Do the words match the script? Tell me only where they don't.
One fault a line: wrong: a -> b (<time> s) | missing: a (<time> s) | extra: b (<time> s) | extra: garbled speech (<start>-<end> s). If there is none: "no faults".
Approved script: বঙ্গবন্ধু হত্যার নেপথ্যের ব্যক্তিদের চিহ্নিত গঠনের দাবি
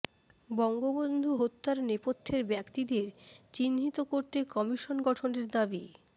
extra: করতে কমিশন (4.1 s)